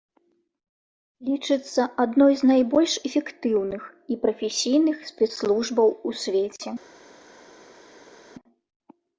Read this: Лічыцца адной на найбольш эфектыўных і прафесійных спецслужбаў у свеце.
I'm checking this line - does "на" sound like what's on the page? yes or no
no